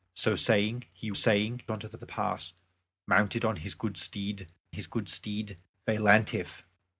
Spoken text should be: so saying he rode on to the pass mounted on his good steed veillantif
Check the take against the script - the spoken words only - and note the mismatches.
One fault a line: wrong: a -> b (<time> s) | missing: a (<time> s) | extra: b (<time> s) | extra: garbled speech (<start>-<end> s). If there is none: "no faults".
wrong: rode -> saying (1.1 s)
extra: the (2.0 s)
extra: his good steed (4.7 s)